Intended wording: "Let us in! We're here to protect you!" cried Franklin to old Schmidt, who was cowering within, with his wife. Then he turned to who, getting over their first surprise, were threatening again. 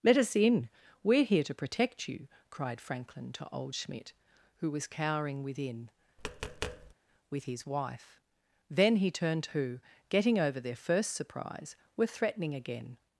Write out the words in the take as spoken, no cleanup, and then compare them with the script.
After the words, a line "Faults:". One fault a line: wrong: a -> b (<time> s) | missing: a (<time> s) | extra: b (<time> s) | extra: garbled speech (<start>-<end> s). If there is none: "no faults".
"Let us in! We're here to protect you!" cried Franklin to old Schmidt, who was cowering within, with his wife. Then he turned to who, getting over their first surprise, were threatening again.
Faults:
no faults